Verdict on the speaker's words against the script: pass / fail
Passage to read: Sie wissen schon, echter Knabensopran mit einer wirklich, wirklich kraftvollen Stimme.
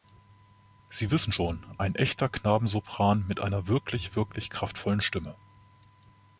fail